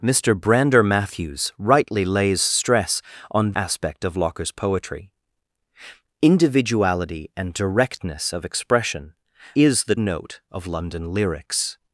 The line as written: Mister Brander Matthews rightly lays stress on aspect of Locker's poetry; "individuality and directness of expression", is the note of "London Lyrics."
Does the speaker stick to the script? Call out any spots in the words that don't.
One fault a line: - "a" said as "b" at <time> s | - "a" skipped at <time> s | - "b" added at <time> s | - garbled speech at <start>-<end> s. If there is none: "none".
none